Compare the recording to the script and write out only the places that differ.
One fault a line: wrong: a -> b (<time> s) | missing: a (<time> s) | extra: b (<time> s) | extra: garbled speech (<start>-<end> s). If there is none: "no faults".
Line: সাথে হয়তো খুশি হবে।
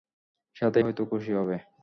no faults